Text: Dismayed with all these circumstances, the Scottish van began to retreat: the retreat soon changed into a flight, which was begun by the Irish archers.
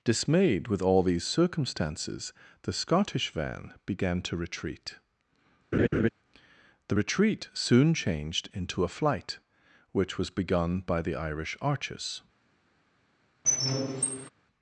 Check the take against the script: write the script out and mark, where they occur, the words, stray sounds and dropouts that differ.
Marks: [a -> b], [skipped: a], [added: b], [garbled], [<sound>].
Dismayed with all these circumstances, the Scottish van began to retreat: [laugh] the retreat soon changed into a flight, which was begun by the Irish archers. [squeak]